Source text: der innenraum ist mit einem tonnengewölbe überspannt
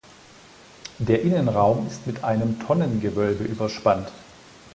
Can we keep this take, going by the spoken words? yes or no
yes